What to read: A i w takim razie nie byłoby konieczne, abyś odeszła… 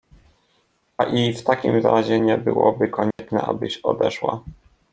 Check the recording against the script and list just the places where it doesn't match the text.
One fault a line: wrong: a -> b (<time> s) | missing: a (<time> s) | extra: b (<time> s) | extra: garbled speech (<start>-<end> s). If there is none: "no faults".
no faults